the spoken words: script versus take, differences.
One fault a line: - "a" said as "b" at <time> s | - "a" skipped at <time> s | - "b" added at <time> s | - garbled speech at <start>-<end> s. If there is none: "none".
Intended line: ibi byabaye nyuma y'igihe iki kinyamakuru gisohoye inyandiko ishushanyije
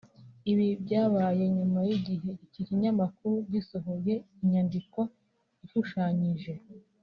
none